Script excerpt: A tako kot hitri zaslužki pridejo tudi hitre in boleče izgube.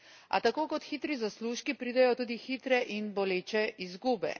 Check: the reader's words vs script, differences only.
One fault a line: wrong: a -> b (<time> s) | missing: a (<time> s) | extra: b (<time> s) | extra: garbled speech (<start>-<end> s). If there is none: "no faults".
no faults